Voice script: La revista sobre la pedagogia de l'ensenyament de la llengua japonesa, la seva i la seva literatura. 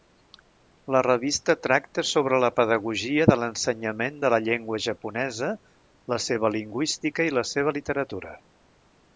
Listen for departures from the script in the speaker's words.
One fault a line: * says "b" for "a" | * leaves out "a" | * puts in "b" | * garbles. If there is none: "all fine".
* puts in "tracta"
* puts in "lingüística"